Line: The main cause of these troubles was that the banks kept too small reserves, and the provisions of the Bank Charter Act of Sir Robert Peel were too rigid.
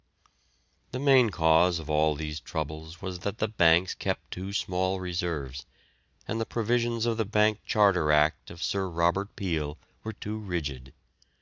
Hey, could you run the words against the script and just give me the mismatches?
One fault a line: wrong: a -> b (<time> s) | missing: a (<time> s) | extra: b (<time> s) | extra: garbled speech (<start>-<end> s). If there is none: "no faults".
extra: all (1.9 s)